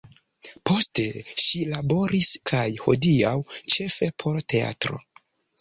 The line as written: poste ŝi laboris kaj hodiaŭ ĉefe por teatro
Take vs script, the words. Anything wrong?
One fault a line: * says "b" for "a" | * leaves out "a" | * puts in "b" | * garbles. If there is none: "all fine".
all fine